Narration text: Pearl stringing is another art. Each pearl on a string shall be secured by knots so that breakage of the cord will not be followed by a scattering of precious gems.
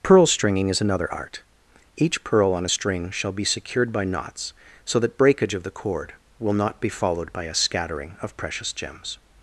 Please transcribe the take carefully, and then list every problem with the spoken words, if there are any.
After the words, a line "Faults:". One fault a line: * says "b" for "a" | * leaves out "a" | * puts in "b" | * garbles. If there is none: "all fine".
Pearl stringing is another art. Each pearl on a string shall be secured by knots so that breakage of the cord will not be followed by a scattering of precious gems.
Faults:
all fine